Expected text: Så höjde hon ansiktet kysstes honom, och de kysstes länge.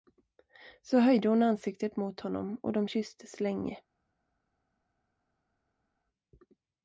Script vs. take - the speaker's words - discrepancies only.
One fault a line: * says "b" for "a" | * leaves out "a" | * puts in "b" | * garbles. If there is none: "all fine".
* says "mot" for "kysstes"